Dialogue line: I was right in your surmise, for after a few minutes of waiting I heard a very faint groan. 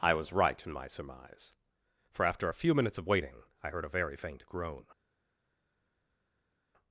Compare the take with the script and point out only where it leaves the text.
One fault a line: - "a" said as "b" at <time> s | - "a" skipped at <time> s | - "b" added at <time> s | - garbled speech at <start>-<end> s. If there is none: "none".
- "your" said as "my" at 0.7 s